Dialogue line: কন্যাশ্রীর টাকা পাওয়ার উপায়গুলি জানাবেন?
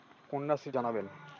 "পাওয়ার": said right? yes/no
no